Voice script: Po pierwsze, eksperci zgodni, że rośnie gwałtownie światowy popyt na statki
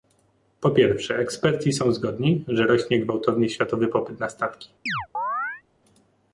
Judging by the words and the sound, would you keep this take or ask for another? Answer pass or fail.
fail